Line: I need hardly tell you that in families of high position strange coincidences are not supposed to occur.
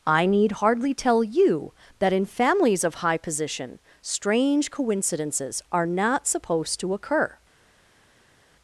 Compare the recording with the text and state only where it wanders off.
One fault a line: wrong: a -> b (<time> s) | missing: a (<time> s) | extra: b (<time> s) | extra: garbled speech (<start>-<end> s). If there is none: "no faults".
no faults